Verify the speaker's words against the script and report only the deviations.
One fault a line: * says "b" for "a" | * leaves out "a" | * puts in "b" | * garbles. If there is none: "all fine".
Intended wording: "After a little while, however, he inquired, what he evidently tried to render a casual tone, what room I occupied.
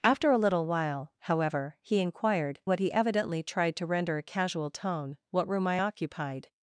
all fine